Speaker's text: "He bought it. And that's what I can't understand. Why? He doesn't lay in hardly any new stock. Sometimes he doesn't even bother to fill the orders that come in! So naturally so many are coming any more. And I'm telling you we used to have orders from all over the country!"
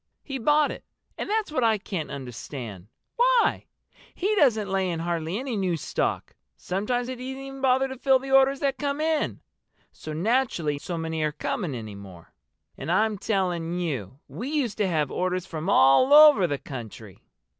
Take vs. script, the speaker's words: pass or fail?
pass